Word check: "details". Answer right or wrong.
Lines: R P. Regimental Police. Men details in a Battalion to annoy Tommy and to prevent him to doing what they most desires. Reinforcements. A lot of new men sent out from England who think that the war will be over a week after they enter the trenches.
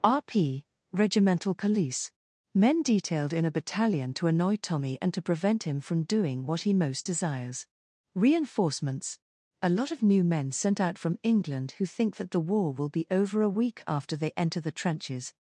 wrong